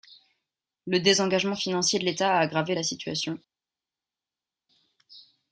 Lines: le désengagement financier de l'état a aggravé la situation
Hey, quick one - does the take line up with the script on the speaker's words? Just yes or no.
yes